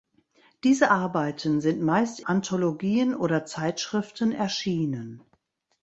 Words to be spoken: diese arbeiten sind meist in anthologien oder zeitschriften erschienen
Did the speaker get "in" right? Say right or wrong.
wrong